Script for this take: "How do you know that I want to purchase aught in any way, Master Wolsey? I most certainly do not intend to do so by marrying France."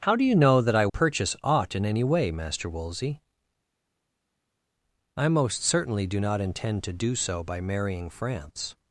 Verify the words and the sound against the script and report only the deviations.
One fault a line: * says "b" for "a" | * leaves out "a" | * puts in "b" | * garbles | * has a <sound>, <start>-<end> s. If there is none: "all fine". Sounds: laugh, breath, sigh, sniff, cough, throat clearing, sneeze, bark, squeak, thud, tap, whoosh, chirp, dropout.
* leaves out "want to"